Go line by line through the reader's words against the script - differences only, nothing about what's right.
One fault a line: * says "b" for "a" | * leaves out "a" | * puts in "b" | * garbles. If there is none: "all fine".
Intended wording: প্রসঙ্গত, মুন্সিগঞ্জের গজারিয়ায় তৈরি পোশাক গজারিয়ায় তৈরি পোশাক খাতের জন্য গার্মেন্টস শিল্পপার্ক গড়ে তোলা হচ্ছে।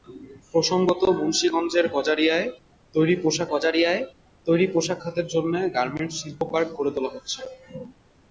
all fine